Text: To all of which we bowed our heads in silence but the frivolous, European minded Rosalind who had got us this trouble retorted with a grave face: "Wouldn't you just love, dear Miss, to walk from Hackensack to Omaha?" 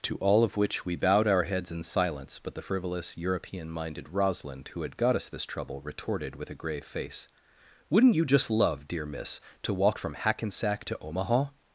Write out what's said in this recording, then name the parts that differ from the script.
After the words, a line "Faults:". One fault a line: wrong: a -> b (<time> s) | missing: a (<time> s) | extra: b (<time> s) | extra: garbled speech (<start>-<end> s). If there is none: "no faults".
To all of which we bowed our heads in silence but the frivolous, European minded Rosalind who had got us this trouble retorted with a grave face: "Wouldn't you just love, dear Miss, to walk from Hackensack to Omaha?"
Faults:
no faults